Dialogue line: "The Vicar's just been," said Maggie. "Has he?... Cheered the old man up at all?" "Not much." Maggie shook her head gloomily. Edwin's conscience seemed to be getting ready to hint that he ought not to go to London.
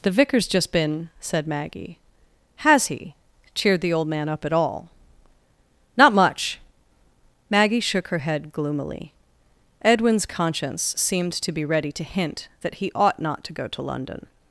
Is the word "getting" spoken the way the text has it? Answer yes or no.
no